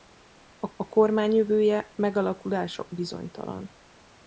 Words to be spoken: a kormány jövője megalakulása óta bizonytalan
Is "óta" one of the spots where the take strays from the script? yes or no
yes